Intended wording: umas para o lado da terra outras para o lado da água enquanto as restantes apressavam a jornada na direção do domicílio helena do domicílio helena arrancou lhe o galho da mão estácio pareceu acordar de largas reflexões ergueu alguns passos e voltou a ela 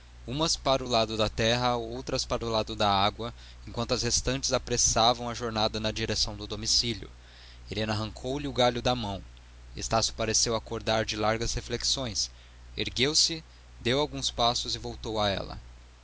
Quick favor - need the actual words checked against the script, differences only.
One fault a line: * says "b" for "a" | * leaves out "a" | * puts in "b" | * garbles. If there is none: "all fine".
* leaves out "do domicílio helena"
* puts in "se deu"